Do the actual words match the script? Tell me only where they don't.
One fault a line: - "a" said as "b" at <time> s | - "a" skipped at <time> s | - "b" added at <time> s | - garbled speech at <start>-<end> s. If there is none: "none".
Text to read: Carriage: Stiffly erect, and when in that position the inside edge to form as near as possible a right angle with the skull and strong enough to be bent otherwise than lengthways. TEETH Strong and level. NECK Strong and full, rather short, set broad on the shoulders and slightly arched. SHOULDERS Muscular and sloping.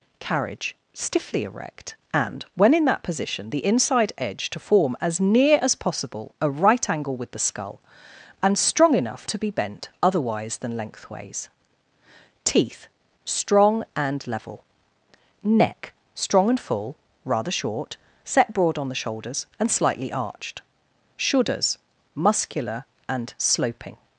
none